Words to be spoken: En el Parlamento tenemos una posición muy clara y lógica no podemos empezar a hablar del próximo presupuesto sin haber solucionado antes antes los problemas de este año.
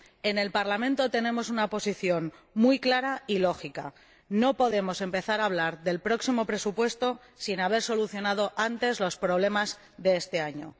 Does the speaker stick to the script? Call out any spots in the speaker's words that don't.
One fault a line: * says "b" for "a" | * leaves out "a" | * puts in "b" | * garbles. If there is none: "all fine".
* leaves out "antes"